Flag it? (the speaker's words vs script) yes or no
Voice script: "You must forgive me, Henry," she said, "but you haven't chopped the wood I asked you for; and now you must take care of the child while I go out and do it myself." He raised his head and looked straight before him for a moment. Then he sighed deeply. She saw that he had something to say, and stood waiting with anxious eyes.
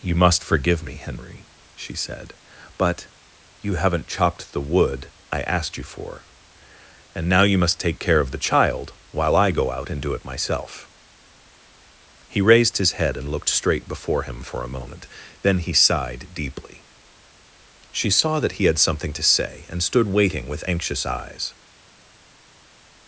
no